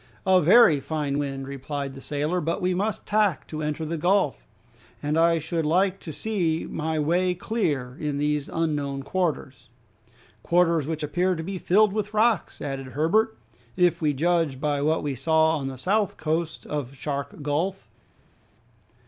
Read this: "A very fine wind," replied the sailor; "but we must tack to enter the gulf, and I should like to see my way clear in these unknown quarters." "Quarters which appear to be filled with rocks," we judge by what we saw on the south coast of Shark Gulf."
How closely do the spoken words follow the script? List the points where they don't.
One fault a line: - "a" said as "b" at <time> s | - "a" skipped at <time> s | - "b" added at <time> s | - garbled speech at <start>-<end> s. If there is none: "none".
- "added Herbert if" added at 12.6 s